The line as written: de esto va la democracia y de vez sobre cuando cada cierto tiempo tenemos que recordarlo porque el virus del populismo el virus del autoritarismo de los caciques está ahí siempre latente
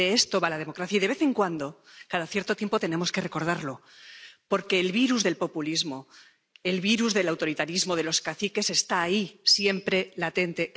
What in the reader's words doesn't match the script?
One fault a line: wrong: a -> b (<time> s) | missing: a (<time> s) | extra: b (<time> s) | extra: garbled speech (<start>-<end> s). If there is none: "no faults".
wrong: sobre -> en (1.2 s)